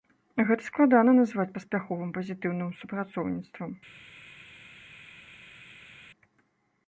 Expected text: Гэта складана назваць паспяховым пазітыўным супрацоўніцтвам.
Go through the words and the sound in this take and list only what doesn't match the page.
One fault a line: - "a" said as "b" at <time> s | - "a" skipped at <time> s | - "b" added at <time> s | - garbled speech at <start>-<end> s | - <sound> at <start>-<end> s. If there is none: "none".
none